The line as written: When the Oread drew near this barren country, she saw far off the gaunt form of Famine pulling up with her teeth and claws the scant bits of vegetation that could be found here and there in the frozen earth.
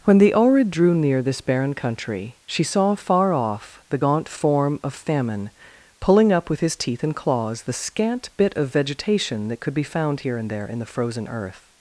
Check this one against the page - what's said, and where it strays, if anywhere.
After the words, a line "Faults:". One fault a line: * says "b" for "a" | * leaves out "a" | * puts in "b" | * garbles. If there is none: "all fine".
When the Oread drew near this barren country, she saw far off the gaunt form of Famine pulling up with his teeth and claws the scant bit of vegetation that could be found here and there in the frozen earth.
Faults:
* says "his" for "her"
* says "bit" for "bits"